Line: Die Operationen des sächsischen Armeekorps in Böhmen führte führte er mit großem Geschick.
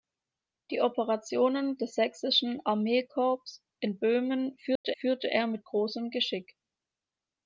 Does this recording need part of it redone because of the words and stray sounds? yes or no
yes